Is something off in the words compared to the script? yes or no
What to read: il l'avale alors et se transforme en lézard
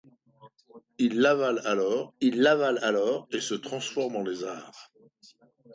yes